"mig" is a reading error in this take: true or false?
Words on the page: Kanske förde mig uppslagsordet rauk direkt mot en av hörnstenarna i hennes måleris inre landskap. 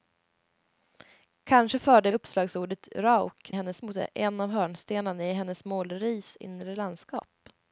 true